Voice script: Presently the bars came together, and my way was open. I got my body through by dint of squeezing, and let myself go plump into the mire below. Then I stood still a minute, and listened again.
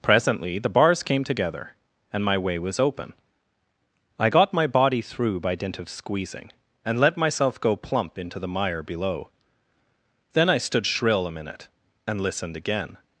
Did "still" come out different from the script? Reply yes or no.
yes